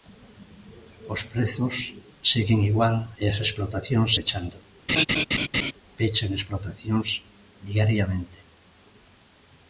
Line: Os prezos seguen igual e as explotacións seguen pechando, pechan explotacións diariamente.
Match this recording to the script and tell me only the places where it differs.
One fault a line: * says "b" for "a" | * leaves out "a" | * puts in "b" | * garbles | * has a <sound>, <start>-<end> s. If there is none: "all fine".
* leaves out "seguen"
* has a laugh, 4.9-5.7 s